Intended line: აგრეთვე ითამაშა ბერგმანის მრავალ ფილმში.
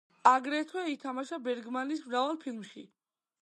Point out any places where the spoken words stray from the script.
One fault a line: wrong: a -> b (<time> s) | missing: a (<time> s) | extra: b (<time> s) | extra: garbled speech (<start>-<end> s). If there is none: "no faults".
no faults